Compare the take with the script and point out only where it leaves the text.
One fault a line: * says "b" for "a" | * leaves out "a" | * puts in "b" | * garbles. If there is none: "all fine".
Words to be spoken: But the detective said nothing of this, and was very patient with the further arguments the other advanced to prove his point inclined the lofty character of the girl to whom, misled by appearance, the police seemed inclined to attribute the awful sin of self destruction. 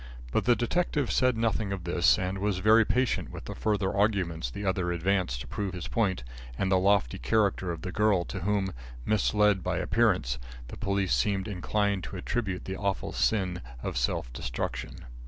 * says "and" for "inclined"